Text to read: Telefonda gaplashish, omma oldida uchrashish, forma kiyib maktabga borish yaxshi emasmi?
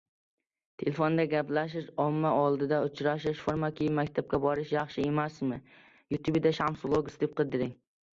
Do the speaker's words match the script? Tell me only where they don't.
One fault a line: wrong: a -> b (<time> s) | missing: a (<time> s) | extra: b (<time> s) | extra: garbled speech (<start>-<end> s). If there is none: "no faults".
no faults